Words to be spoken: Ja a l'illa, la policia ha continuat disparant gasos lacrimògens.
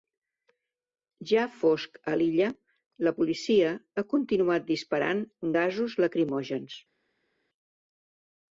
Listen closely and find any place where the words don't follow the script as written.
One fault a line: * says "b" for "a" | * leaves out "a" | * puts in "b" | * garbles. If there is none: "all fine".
* puts in "fosc"